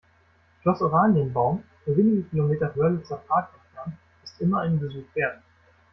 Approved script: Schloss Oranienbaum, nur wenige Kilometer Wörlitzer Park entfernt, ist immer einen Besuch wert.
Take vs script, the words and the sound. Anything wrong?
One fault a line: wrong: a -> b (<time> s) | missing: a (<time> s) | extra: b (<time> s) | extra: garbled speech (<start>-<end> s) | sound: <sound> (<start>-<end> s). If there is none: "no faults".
no faults